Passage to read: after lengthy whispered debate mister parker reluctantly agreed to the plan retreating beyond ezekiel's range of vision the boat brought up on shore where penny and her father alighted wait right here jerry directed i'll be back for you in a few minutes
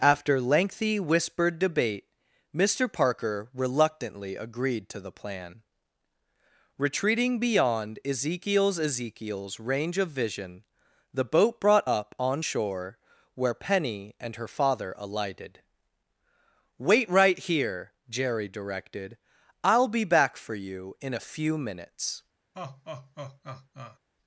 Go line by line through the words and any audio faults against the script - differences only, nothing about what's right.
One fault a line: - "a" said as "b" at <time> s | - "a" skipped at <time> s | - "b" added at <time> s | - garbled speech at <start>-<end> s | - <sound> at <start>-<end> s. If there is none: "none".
- "ezekiel's" added at 8.8 s
- laugh at 22.5-24.0 s